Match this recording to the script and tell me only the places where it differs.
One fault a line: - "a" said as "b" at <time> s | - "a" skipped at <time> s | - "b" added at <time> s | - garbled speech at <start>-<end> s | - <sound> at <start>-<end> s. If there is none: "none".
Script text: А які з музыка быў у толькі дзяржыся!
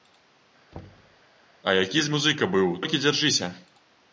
- thud at 0.7-1.2 s